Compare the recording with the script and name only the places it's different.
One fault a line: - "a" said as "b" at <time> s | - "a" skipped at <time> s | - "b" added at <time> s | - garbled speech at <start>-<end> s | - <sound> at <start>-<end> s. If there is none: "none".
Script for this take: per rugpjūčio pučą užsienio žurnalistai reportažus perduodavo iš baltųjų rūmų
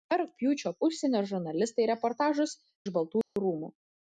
- "pučą" skipped at 0.7 s
- "perduodavo" skipped at 2.6 s
- dropout at 3.2-3.4 s